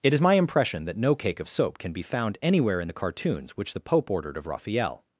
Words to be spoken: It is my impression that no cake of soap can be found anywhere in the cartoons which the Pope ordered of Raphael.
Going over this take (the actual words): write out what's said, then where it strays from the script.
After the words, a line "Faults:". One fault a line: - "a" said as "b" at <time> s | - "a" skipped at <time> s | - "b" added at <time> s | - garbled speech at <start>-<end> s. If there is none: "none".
It is my impression that no cake of soap can be found anywhere in the cartoons which the Pope ordered of Raphael.
Faults:
none